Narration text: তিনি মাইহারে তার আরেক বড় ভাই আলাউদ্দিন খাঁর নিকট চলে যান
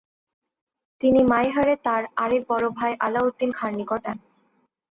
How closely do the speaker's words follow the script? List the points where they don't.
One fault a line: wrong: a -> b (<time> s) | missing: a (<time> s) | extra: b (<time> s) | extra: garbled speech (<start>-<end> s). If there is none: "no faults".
missing: চলে (4.0 s)